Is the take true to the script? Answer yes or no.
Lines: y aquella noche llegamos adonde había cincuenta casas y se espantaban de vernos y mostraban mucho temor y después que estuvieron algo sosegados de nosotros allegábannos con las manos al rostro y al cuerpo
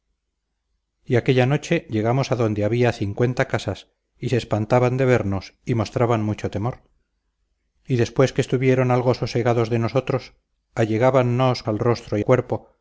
no